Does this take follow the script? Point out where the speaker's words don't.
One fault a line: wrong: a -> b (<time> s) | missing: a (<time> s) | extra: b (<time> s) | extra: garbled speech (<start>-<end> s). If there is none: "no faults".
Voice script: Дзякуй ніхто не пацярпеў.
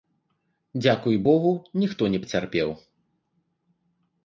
extra: богу (1.2 s)